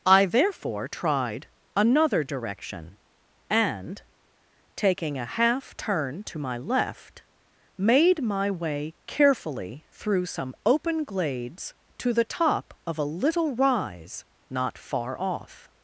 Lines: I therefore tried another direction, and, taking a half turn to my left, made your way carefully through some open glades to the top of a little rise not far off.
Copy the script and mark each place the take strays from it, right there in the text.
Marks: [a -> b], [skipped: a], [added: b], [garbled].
I therefore tried another direction, and, taking a half turn to my left, made [your -> my] way carefully through some open glades to the top of a little rise not far off.